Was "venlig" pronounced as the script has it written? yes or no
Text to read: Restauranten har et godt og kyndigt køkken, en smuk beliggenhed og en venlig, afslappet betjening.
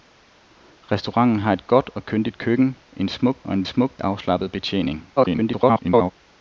no